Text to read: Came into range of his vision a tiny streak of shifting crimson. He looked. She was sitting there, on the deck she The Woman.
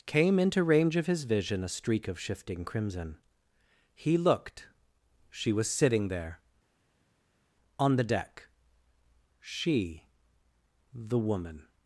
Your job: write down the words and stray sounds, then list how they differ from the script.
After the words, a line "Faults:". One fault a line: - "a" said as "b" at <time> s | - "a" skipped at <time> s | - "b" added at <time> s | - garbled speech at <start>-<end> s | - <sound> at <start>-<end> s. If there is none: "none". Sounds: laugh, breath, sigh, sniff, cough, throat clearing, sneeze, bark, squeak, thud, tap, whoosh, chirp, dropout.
Came into range of his vision a streak of shifting crimson. He looked. She was sitting there, on the deck she The Woman.
Faults:
- "tiny" skipped at 1.7 s